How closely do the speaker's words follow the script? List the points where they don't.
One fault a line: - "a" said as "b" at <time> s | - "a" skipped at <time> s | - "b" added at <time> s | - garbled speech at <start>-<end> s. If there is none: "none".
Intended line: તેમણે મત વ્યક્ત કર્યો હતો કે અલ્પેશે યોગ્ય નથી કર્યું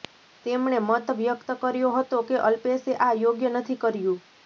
- "આ" added at 3.0 s